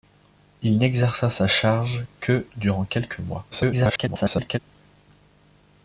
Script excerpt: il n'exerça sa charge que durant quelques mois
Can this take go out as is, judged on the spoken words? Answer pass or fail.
fail